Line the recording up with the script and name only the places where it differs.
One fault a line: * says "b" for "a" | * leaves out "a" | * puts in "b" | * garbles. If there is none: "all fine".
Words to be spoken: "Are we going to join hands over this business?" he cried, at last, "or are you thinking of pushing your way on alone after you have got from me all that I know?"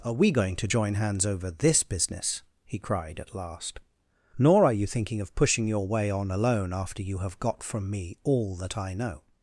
* says "nor" for "or"